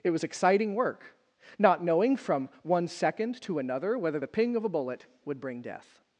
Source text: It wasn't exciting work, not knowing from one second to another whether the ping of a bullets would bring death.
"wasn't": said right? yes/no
no